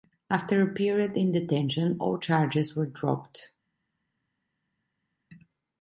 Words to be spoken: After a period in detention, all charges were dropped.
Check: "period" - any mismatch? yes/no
no